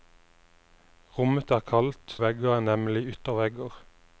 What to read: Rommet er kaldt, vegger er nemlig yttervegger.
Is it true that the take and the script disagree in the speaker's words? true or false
false